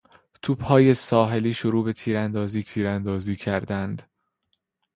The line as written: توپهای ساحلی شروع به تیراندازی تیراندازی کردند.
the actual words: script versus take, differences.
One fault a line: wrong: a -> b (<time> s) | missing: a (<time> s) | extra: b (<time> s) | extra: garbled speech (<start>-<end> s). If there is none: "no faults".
no faults